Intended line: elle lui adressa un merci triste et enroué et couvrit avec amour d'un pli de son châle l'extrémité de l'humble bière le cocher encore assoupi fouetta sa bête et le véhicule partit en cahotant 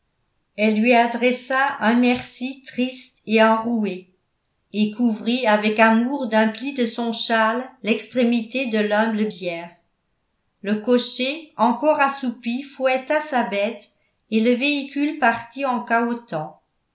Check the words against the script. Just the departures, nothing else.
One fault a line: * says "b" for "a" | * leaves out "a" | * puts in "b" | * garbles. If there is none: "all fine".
all fine